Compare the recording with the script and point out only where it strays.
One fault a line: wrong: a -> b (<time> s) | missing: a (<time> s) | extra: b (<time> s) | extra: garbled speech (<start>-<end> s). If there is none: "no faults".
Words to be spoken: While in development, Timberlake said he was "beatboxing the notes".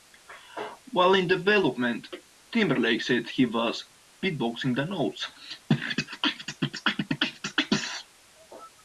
no faults